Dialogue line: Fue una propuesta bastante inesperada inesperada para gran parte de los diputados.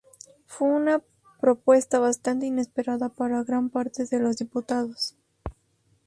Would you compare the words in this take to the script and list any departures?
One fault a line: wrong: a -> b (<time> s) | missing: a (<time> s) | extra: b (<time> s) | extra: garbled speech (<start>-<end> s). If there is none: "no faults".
missing: inesperada (3.1 s)